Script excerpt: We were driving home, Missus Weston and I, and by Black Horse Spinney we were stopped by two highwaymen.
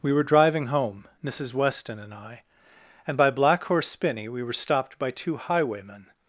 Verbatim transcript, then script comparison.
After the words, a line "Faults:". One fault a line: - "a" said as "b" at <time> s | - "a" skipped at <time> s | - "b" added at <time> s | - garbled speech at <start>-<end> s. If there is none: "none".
We were driving home, Missus Weston and I, and by Black Horse Spinney we were stopped by two highwaymen.
Faults:
none